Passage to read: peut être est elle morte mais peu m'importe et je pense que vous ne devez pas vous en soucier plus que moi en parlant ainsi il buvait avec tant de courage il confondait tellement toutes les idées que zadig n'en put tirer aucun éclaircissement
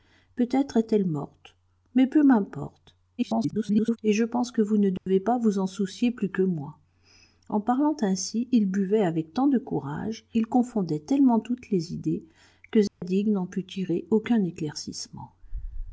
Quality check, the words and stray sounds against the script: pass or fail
fail